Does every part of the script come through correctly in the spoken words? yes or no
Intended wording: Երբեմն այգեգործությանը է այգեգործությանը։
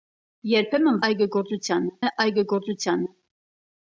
yes